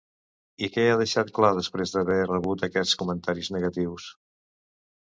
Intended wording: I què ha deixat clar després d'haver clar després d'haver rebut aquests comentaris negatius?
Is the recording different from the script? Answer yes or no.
yes